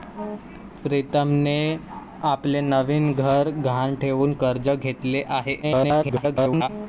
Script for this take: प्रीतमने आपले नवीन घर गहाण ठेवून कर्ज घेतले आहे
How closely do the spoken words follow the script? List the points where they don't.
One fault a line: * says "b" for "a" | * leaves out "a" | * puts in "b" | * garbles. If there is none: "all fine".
* garbles